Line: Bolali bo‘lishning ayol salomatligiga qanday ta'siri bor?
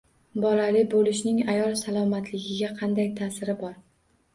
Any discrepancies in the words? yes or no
no